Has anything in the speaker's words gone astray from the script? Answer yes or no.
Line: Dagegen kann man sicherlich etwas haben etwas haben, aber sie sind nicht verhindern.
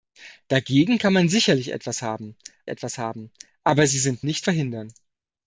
no